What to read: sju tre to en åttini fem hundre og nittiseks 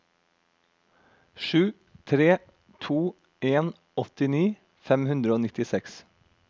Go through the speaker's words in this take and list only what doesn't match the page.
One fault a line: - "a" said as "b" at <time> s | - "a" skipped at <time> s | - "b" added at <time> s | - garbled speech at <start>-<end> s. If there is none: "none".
none